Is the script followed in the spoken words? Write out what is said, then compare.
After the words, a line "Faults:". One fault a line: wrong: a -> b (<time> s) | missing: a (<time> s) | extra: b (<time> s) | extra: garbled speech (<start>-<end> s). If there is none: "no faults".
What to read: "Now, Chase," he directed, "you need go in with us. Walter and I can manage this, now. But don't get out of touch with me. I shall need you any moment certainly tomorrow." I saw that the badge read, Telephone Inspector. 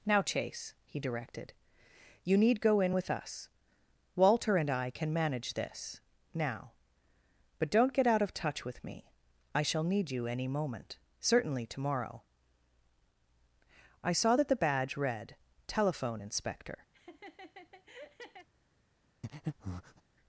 "Now, Chase," he directed, "you need go in with us. Walter and I can manage this, now. But don't get out of touch with me. I shall need you any moment certainly tomorrow." I saw that the badge read, Telephone Inspector.
Faults:
no faults